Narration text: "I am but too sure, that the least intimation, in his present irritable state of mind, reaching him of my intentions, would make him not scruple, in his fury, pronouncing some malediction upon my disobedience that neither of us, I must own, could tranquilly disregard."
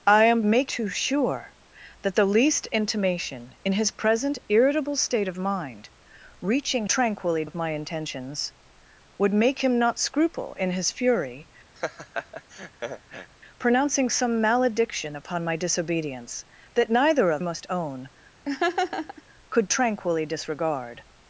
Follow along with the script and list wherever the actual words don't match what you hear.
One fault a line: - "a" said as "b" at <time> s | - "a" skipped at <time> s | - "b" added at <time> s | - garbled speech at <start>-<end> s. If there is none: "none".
- "but" said as "make" at 0.4 s
- "him" said as "tranquilly" at 6.9 s
- "us I" skipped at 17.4 s